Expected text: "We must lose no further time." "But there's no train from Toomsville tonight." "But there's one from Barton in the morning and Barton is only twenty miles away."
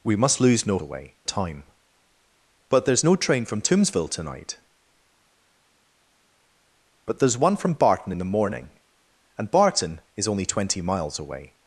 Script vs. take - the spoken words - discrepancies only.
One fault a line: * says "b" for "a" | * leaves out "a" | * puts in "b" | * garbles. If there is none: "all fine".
* says "away" for "further"